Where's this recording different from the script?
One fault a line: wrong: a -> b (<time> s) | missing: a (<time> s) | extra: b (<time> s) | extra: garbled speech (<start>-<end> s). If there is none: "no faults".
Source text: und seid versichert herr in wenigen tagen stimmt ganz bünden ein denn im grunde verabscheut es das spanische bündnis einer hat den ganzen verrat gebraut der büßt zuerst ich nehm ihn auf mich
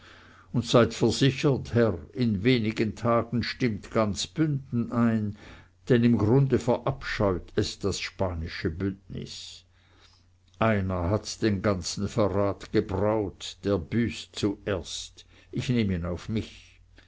no faults